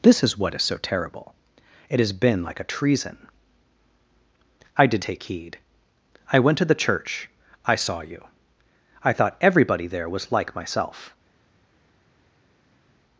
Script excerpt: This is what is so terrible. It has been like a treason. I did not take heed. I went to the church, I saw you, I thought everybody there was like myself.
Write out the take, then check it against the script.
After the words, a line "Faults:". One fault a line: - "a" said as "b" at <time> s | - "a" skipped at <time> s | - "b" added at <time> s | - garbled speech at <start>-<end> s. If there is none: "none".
This is what is so terrible. It has been like a treason. I did take heed. I went to the church, I saw you, I thought everybody there was like myself.
Faults:
- "not" skipped at 5.0 s